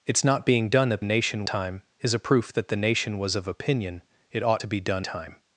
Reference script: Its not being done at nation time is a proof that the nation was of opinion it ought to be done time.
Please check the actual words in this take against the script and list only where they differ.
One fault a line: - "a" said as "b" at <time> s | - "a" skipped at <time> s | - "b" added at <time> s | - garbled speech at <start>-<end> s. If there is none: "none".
none